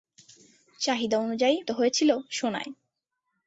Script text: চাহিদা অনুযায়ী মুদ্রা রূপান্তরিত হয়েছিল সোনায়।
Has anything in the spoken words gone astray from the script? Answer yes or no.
yes